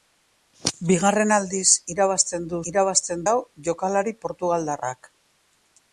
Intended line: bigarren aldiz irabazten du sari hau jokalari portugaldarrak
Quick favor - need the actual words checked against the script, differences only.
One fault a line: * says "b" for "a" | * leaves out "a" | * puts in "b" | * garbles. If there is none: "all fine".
* says "irabazten" for "sari"